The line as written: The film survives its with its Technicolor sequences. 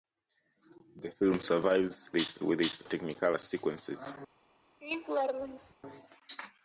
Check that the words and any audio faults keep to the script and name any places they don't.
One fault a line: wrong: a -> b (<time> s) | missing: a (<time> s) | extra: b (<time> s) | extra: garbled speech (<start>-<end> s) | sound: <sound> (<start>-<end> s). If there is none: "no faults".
sound: laugh (4.8-5.7 s)